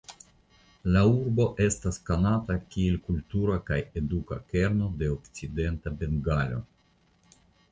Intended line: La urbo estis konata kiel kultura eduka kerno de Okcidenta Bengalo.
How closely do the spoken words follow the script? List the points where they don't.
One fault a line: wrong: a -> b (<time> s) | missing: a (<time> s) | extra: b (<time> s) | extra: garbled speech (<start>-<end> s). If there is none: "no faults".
wrong: estis -> estas (1.6 s)
extra: kaj (3.7 s)